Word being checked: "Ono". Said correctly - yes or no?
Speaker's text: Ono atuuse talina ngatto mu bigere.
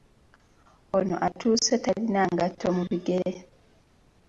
yes